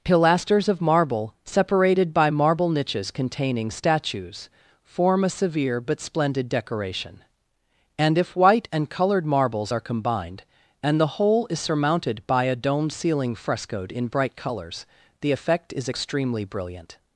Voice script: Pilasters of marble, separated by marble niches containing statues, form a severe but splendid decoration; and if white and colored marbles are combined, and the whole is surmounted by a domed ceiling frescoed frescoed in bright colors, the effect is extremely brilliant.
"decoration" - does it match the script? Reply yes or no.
yes